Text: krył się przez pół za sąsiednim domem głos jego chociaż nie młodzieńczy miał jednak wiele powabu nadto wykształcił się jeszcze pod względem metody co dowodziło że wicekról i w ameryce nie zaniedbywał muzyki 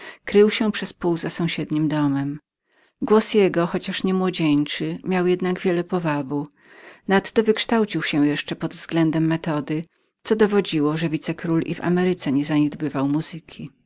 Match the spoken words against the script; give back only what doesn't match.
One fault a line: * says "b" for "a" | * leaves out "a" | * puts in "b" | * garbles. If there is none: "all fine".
all fine